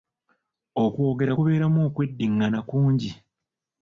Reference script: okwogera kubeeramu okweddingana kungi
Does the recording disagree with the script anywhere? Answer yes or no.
no